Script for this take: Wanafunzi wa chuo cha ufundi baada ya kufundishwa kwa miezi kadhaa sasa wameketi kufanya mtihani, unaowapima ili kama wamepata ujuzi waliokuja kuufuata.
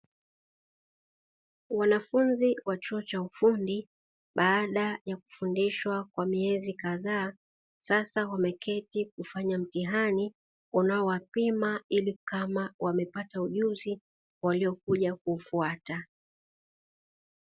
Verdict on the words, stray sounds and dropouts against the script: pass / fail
pass